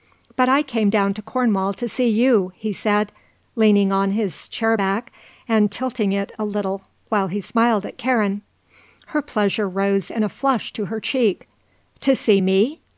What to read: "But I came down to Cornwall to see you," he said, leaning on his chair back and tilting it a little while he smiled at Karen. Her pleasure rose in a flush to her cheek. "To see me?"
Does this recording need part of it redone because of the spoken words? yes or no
no